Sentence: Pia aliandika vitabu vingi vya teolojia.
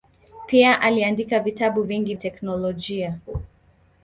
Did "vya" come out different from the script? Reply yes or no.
yes